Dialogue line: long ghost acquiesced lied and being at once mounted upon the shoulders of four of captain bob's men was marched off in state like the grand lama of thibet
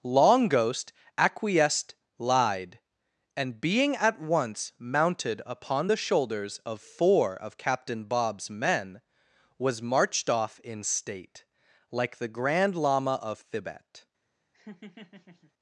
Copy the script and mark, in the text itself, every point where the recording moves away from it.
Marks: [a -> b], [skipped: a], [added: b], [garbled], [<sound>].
long ghost acquiesced lied and being at once mounted upon the shoulders of four of captain bob's men was marched off in state like the grand lama of thibet [laugh]